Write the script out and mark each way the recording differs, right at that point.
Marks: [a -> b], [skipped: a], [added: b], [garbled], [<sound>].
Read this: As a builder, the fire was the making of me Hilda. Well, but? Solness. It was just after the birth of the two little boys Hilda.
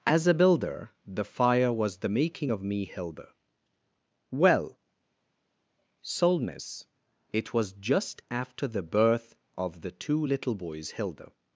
As a builder, the fire was the making of me Hilda. Well, [skipped: but?] Solness. It was just after the birth of the two little boys Hilda.